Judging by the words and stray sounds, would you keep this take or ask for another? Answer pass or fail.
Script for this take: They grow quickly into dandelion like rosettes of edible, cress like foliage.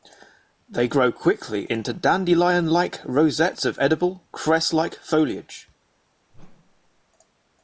fail